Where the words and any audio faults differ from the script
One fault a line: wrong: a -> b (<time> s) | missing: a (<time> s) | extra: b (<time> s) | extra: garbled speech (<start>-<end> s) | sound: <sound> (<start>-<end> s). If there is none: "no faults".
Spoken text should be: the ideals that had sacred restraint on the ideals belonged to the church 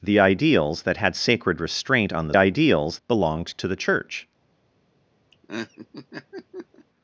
sound: laugh (5.3-6.9 s)